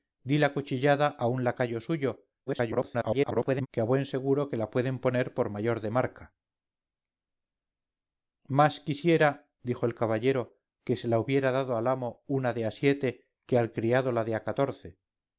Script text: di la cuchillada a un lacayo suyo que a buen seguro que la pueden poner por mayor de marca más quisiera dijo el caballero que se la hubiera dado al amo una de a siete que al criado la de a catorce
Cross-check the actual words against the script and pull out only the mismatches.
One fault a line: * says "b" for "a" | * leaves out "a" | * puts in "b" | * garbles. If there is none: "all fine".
* garbles